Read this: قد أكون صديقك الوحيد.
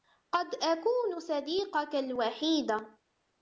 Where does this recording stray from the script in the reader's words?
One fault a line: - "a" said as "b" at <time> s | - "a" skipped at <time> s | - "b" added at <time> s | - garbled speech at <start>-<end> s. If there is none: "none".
none